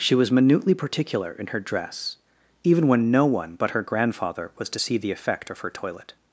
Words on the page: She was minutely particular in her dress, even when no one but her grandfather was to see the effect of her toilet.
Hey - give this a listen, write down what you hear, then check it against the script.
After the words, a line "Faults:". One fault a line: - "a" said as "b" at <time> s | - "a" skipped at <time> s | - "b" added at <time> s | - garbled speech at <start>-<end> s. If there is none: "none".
She was minutely particular in her dress, even when no one but her grandfather was to see the effect of her toilet.
Faults:
none